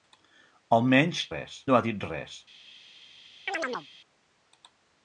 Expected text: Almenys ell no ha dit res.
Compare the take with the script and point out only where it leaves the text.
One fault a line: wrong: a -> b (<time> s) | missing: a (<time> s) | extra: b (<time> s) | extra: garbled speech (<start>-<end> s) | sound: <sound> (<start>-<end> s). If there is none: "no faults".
wrong: ell -> res (1.3 s)
sound: chirp (3.5-3.9 s)